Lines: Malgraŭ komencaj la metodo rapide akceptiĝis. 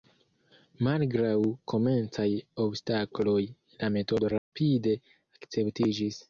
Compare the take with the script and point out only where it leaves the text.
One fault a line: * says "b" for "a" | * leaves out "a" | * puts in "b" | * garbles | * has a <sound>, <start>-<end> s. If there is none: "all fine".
* puts in "obstakloj"
* has a dropout, 4.4-4.5 s